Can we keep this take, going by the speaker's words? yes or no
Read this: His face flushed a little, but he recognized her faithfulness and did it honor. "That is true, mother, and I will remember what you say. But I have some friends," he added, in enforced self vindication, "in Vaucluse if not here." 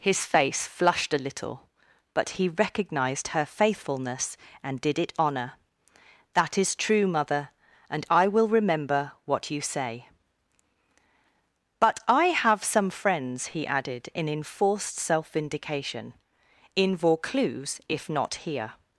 yes